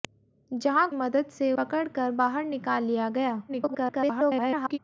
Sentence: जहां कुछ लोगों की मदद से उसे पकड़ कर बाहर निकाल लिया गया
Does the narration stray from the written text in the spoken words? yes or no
yes